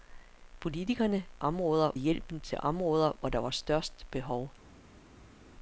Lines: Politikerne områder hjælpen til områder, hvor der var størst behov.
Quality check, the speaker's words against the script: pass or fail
pass